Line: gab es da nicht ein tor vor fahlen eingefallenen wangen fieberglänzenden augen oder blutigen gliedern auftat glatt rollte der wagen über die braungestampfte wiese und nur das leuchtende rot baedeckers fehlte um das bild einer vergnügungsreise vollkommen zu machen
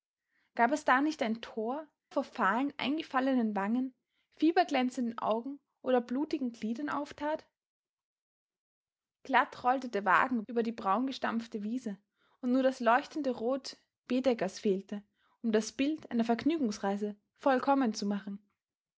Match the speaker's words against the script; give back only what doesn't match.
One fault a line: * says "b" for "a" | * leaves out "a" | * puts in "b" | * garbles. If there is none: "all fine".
all fine